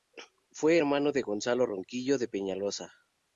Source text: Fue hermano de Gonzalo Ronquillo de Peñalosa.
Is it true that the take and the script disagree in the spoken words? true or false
false